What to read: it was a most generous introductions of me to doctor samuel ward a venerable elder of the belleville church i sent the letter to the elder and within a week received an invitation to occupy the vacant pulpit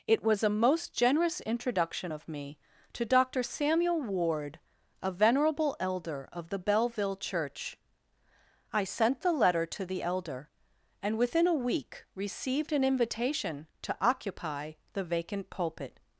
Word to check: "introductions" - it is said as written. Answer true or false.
false